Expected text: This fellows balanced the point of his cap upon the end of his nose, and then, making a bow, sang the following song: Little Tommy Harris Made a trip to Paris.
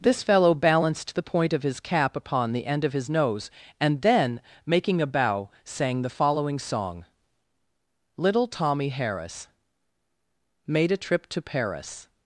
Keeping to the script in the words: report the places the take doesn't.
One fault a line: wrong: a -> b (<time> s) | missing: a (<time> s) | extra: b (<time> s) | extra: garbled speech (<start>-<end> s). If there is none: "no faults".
wrong: fellows -> fellow (0.2 s)